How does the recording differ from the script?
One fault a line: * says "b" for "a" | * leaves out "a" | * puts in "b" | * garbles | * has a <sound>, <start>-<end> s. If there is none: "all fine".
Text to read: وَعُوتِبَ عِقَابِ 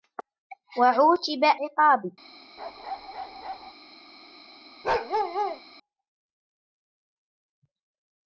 * has a bark, 2.6-3.7 s
* has a bark, 4.8-5.6 s